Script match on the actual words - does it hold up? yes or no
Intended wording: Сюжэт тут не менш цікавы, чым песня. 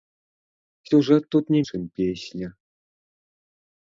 no